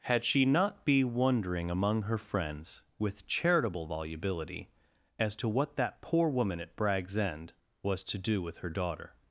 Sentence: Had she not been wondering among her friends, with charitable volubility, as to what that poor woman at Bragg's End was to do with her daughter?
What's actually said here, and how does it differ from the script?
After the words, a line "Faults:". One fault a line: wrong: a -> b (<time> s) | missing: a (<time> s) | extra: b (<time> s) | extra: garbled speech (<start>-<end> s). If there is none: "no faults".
Had she not be wondering among her friends, with charitable volubility, as to what that poor woman at Bragg's End was to do with her daughter?
Faults:
wrong: been -> be (0.8 s)